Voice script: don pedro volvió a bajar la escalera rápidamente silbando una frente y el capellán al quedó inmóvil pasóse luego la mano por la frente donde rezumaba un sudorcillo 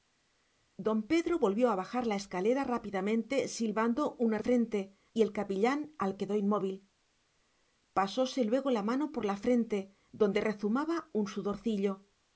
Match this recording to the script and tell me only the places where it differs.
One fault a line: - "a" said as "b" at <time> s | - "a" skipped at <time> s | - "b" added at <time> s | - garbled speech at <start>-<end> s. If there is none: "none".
none